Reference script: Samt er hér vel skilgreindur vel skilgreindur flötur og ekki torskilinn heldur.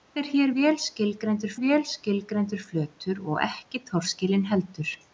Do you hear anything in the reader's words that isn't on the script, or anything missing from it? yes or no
no